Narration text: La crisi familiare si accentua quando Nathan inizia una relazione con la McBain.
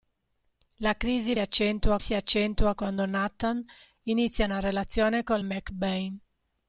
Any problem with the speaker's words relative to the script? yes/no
yes